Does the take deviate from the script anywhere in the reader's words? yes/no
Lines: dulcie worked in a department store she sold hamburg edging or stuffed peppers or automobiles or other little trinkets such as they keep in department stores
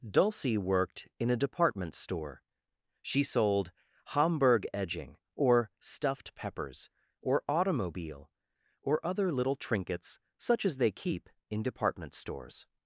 yes